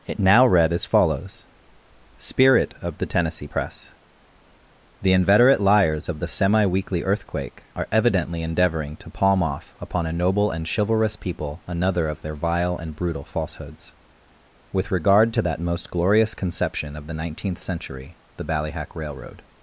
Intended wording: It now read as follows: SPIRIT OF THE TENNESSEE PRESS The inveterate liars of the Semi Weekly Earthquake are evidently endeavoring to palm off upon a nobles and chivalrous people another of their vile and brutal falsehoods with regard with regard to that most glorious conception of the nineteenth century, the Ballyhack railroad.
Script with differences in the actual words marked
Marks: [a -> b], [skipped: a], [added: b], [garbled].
It now read as follows: SPIRIT OF THE TENNESSEE PRESS The inveterate liars of the Semi Weekly Earthquake are evidently endeavoring to palm off upon a [nobles -> noble] and chivalrous people another of their vile and brutal falsehoods with regard [skipped: with regard] to that most glorious conception of the nineteenth century, the Ballyhack railroad.